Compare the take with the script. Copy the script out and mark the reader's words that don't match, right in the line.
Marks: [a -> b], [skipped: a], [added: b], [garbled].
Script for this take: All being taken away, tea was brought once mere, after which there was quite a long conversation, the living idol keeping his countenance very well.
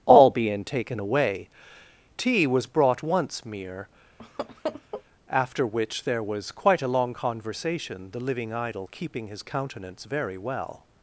All being taken away, tea was brought once mere, after which there was quite a long conversation, the living idol keeping his countenance very well.